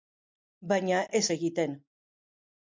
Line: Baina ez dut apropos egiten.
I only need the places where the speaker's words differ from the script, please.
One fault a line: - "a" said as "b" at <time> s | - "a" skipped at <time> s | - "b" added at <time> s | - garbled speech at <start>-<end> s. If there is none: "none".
- "dut apropos" skipped at 1.2 s